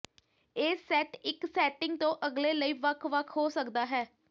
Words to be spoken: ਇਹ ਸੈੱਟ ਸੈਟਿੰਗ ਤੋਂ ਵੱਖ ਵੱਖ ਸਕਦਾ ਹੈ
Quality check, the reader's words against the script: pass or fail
fail